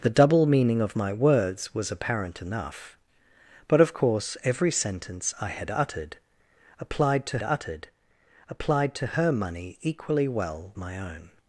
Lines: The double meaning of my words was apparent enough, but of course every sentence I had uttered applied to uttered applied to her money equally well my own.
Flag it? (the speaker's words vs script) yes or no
no